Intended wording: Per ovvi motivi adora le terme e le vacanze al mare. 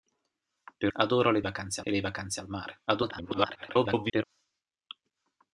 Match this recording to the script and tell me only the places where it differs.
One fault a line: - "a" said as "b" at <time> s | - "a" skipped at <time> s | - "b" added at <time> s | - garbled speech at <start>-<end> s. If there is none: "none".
- "ovvi motivi" skipped at 0.9 s
- "terme" said as "vacanze" at 1.4 s
- garbled speech at 2.9-4.2 s